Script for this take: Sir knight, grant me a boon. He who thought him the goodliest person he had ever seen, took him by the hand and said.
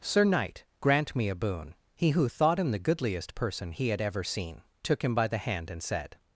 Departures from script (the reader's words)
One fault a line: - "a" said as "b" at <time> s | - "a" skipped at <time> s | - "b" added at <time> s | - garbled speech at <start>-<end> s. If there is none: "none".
none